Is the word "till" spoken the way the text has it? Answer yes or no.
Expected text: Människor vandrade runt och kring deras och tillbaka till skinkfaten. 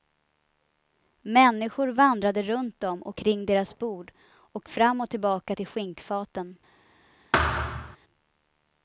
yes